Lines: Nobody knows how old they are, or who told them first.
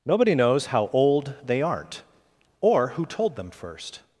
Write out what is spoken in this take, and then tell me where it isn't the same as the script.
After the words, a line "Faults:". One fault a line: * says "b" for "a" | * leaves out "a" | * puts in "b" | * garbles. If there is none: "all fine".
Nobody knows how old they aren't, or who told them first.
Faults:
* says "aren't" for "are"